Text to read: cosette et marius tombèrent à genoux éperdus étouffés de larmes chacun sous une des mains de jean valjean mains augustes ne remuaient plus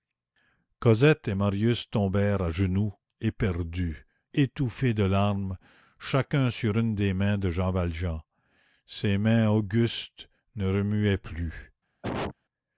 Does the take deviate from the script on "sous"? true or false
true